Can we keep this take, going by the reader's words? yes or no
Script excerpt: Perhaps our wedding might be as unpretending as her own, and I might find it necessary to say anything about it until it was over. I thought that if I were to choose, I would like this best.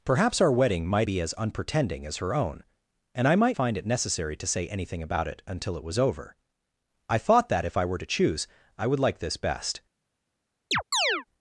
yes